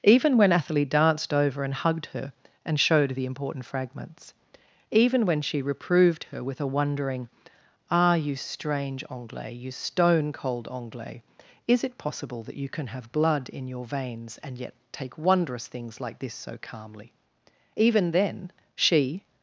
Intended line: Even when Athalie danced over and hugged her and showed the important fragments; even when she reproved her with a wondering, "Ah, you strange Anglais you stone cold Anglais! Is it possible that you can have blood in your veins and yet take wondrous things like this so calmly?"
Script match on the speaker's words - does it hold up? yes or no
no